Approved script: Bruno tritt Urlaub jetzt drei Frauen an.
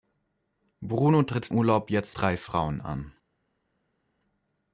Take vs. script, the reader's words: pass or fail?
pass